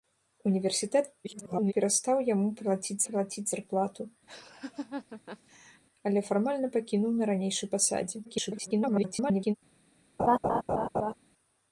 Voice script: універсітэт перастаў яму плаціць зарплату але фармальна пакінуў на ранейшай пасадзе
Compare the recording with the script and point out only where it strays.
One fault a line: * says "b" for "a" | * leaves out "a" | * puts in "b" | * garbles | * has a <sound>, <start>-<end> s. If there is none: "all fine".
* garbles
* puts in "плаціць"
* has a laugh, 4.3-5.8 s
* garbles
* has a laugh, 10.2-11.1 s